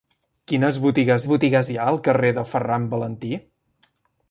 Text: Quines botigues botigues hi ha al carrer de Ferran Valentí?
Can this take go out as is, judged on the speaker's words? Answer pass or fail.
pass